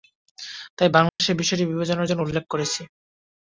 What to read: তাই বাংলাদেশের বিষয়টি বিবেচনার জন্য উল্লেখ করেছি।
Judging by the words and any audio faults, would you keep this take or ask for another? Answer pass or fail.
fail